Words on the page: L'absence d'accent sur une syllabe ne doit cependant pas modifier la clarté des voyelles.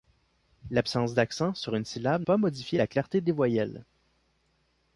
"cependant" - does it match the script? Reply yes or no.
no